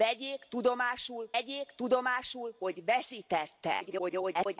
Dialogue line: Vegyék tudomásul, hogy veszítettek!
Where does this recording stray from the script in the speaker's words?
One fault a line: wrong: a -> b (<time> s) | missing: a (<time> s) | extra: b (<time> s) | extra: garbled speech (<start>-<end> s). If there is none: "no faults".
extra: vegyék tudomásul (1.3 s)
extra: garbled speech (3.8-4.6 s)